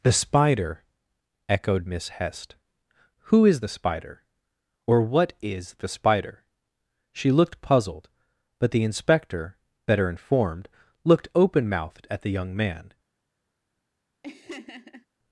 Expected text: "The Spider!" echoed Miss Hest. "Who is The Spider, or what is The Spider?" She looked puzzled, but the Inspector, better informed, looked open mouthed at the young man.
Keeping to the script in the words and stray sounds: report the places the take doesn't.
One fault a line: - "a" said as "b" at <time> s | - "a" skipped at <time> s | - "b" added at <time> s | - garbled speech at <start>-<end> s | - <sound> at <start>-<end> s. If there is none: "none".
- laugh at 14.2-15.1 s